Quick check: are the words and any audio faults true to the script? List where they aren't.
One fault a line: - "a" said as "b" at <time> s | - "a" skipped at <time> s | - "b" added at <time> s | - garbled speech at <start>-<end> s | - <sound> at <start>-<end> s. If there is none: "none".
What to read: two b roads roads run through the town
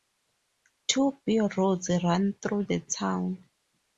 - "roads" skipped at 1.9 s